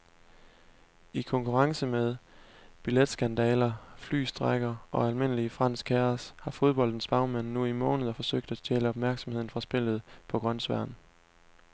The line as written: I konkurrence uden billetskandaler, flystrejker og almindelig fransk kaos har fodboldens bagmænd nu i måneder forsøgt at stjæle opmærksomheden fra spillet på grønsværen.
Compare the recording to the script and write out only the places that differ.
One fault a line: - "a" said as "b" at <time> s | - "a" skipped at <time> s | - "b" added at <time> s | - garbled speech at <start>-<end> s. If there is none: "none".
- "uden" said as "med" at 1.9 s